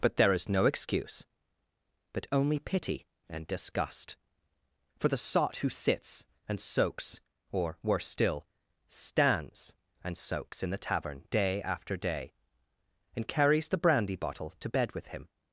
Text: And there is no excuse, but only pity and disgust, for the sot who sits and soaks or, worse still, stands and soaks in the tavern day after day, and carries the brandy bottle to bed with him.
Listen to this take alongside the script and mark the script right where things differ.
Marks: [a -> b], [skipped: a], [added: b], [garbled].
[And -> But] there is no excuse, but only pity and disgust, for the sot who sits and soaks or, worse still, stands and soaks in the tavern day after day, and carries the brandy bottle to bed with him.